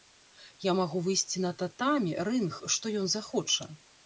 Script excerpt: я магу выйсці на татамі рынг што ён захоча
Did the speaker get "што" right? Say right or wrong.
right